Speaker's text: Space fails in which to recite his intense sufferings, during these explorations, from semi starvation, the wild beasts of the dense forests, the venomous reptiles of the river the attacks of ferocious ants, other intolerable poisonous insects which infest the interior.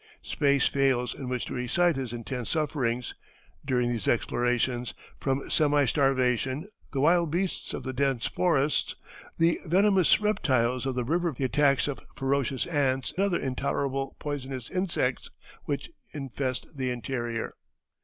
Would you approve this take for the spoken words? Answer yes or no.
yes